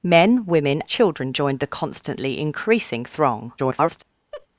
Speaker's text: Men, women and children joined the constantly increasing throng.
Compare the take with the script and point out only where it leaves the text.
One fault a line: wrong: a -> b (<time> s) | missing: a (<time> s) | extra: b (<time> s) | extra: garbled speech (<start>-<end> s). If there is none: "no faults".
missing: and (0.8 s)
extra: garbled speech (3.6-4.0 s)